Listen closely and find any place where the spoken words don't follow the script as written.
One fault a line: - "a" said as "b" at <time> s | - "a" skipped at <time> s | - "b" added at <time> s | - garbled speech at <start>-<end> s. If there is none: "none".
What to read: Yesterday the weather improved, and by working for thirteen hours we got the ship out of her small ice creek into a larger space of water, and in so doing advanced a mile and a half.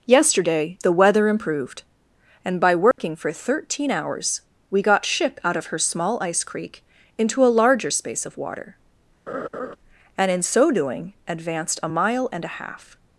- "the" skipped at 5.0 s